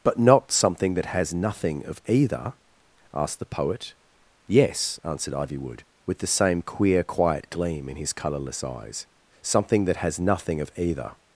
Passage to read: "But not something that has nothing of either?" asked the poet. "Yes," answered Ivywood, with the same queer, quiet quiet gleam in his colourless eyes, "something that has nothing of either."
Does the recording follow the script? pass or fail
fail